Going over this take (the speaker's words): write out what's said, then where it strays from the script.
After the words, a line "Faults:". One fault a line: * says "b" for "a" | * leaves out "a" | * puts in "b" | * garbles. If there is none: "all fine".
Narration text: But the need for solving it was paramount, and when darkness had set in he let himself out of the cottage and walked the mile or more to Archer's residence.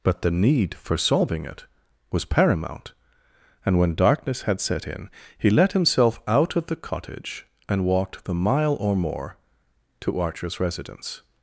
But the need for solving it was paramount, and when darkness had set in he let himself out of the cottage and walked the mile or more to Archer's residence.
Faults:
all fine